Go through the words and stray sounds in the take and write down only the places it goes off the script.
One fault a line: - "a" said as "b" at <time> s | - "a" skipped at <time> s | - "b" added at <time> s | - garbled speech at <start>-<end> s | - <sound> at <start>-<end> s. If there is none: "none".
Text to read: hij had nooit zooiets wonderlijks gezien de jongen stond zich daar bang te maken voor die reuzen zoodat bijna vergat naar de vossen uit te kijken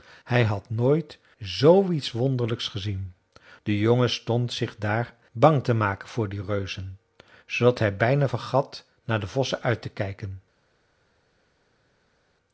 - "hij" added at 7.8 s